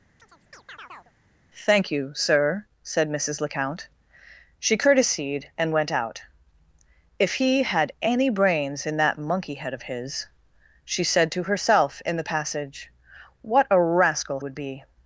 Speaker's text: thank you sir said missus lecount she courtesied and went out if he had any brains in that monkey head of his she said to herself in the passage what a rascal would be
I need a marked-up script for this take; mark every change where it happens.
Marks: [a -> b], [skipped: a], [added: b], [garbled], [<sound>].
[chirp] thank you sir said missus lecount she courtesied and went out if he had any brains in that monkey head of his she said to herself in the passage what a rascal would be